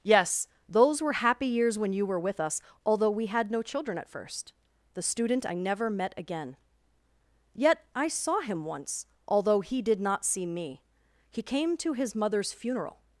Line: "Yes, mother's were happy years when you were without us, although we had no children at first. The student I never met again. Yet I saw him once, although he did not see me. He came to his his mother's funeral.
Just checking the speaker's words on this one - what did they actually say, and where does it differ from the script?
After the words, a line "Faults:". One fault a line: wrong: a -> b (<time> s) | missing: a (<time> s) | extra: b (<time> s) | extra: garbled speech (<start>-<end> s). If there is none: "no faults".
"Yes, those were happy years when you were with us, although we had no children at first. The student I never met again. Yet I saw him once, although he did not see me. He came to his mother's funeral.
Faults:
wrong: mother's -> those (0.7 s)
wrong: without -> with (2.2 s)
missing: his (12.2 s)